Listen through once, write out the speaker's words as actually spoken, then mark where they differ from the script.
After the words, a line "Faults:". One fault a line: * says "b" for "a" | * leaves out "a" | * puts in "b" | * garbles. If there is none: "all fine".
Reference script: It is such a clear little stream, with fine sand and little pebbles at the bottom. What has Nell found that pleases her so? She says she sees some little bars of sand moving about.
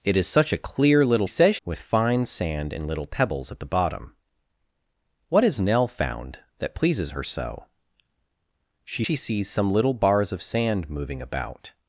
It is such a clear little says, with fine sand and little pebbles at the bottom. What has Nell found that pleases her so? She she sees some little bars of sand moving about.
Faults:
* says "says" for "stream"
* leaves out "says"